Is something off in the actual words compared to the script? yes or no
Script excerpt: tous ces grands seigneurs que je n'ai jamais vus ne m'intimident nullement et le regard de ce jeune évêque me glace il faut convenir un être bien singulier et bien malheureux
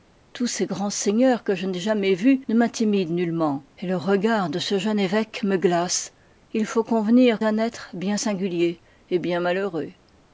no